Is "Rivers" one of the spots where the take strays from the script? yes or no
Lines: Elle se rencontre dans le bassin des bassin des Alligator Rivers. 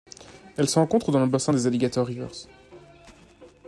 no